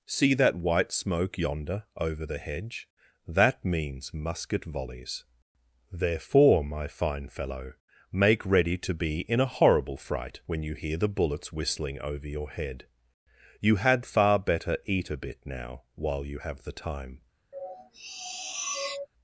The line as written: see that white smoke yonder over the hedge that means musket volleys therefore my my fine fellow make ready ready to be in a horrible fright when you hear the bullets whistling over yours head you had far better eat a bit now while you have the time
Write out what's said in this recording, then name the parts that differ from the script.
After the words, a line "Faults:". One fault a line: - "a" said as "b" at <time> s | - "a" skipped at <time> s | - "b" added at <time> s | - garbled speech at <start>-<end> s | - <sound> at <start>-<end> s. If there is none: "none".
see that white smoke yonder over the hedge that means musket volleys therefore my fine fellow make ready to be in a horrible fright when you hear the bullets whistling over your head you had far better eat a bit now while you have the time
Faults:
- "my" skipped at 6.9 s
- "ready" skipped at 8.8 s
- "yours" said as "your" at 12.3 s
- sniff at 17.5-19.1 s